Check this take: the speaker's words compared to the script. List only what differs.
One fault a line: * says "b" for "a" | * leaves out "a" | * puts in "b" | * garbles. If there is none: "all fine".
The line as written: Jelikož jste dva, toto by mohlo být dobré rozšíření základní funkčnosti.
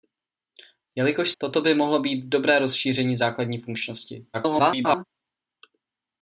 * leaves out "jste dva"
* garbles